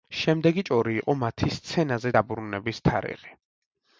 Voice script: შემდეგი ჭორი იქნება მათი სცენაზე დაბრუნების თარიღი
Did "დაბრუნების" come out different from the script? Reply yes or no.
no